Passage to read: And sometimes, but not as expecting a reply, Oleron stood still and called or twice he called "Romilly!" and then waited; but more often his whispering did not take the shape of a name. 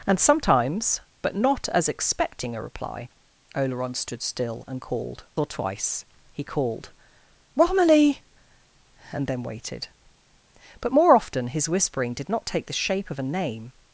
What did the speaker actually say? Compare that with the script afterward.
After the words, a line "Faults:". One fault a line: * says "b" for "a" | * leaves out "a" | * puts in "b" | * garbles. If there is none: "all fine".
And sometimes, but not as expecting a reply, Oleron stood still and called or twice he called "Romilly!" and then waited; but more often his whispering did not take the shape of a name.
Faults:
all fine